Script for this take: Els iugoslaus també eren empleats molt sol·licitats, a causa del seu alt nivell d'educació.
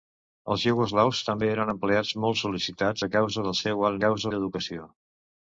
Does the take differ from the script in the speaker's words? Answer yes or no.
yes